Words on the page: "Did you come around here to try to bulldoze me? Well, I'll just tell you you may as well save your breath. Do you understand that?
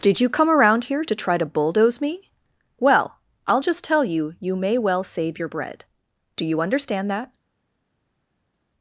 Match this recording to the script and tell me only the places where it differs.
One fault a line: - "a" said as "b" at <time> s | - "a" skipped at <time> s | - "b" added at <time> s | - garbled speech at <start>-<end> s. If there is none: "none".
- "as" skipped at 4.8 s
- "breath" said as "bread" at 5.5 s